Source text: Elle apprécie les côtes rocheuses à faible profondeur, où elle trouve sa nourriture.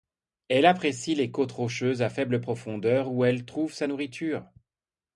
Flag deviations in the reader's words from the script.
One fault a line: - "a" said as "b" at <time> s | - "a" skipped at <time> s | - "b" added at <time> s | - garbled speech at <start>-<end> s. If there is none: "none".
none